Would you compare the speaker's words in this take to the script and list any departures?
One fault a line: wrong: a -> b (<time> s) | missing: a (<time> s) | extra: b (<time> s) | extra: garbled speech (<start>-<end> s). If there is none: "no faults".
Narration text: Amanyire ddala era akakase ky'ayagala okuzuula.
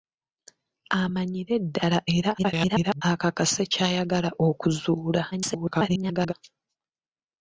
extra: garbled speech (2.4-3.0 s)
extra: garbled speech (5.3-6.3 s)